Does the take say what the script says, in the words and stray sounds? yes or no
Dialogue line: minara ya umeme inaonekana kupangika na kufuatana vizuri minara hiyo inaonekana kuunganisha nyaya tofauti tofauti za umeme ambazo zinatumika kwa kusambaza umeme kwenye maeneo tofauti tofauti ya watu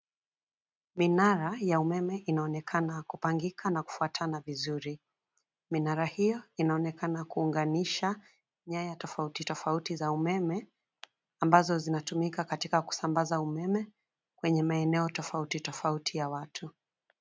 no